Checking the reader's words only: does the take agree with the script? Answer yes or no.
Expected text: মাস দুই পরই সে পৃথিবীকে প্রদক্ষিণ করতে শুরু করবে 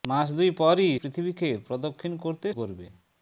no